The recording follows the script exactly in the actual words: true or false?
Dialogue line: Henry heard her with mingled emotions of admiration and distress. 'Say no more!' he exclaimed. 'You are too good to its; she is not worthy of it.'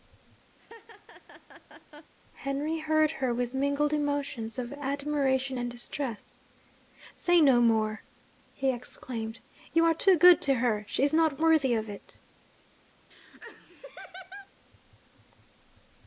false